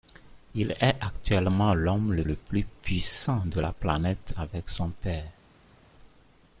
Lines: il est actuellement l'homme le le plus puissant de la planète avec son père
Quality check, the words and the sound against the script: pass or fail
pass